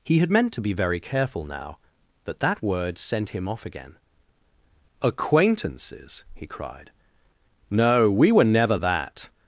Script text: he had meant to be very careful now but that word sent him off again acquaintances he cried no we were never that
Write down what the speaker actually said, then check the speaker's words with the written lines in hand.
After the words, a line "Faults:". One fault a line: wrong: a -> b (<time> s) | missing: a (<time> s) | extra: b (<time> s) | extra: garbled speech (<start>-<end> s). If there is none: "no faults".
he had meant to be very careful now but that word sent him off again acquaintances he cried no we were never that
Faults:
no faults